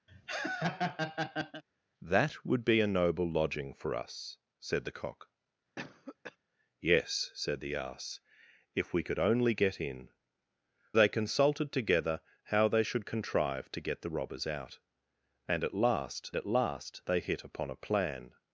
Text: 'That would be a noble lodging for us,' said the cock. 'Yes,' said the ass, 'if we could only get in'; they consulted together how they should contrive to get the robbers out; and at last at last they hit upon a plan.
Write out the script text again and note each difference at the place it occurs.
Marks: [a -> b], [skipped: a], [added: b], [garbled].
'That would be a noble lodging for us,' said the cock. 'Yes,' said the ass, 'if we could only get in'; they consulted together how they should contrive to get the robbers out; and at last at last they hit upon a plan.